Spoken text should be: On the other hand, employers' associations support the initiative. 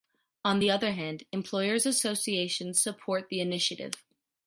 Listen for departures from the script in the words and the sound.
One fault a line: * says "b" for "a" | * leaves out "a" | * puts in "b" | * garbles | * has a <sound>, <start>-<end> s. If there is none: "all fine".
all fine